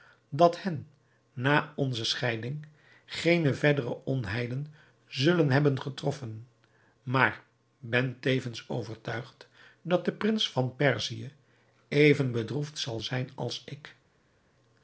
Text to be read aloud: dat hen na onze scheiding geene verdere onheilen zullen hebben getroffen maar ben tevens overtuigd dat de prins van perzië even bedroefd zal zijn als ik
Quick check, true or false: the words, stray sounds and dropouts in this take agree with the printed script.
true